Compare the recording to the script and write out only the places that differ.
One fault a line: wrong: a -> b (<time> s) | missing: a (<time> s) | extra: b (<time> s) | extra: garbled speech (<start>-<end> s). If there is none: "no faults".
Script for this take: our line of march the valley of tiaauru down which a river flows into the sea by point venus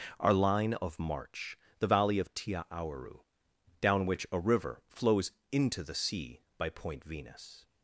no faults